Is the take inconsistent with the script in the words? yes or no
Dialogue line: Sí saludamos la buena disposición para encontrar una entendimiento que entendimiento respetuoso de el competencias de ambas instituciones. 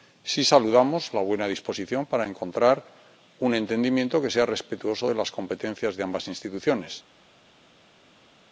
yes